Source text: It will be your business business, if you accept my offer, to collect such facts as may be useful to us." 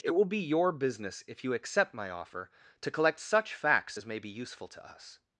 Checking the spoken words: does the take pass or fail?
fail